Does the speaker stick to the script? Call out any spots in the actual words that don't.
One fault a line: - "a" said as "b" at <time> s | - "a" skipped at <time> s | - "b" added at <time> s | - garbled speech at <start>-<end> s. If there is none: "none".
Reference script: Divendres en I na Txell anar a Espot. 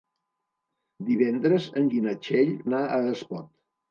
none